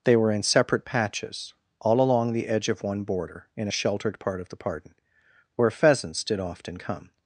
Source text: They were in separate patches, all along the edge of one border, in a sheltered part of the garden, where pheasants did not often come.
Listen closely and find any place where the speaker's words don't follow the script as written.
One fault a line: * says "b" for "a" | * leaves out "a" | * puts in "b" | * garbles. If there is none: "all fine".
* says "pardon" for "garden"
* leaves out "not"